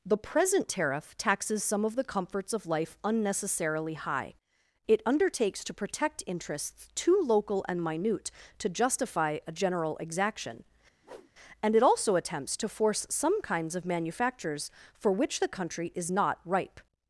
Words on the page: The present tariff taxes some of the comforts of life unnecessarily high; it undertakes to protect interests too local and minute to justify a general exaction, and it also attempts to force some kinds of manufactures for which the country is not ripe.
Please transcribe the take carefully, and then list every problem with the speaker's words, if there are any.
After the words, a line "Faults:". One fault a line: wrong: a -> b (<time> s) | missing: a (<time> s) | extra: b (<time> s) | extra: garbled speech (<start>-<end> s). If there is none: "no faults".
The present tariff taxes some of the comforts of life unnecessarily high; it undertakes to protect interests too local and minute to justify a general exaction, and it also attempts to force some kinds of manufactures for which the country is not ripe.
Faults:
no faults